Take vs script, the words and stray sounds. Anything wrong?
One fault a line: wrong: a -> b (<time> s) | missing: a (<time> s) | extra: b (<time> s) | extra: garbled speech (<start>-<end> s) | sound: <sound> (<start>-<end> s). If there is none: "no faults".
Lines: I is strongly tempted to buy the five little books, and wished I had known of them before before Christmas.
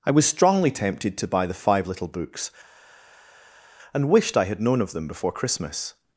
wrong: is -> was (0.1 s)
missing: before (5.3 s)